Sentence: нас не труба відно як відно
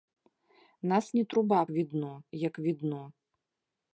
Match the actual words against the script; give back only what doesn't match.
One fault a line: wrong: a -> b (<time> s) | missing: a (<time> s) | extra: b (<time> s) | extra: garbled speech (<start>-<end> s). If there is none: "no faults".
no faults